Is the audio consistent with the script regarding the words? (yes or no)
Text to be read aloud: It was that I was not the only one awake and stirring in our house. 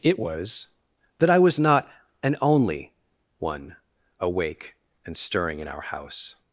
no